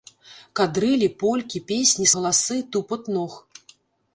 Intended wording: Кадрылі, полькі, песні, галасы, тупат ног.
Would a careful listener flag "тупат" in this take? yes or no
no